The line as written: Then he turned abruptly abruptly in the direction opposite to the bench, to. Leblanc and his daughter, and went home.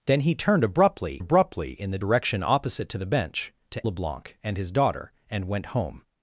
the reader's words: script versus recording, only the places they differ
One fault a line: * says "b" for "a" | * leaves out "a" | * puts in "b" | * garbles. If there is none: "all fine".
all fine